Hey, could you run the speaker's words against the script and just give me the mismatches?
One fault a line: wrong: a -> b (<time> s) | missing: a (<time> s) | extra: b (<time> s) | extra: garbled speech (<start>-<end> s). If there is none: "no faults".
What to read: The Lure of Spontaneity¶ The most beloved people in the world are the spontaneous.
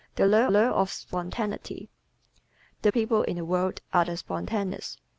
extra: Lure (0.5 s)
missing: most beloved (2.9 s)